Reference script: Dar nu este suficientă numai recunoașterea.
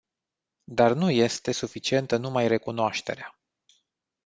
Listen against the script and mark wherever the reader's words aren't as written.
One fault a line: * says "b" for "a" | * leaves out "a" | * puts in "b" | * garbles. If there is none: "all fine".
all fine